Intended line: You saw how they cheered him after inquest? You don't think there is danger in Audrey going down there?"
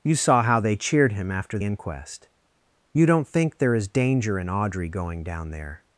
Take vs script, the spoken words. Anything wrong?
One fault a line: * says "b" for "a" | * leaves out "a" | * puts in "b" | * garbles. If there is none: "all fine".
all fine